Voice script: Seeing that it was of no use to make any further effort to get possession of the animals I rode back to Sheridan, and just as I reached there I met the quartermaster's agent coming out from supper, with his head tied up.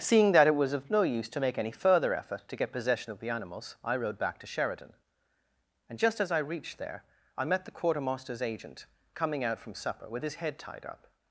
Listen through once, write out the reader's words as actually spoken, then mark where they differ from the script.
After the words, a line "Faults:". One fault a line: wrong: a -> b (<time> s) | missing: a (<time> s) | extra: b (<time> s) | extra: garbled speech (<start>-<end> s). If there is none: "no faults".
Seeing that it was of no use to make any further effort to get possession of the animals I rode back to Sheridan, and just as I reached there I met the quartermaster's agent coming out from supper, with his head tied up.
Faults:
no faults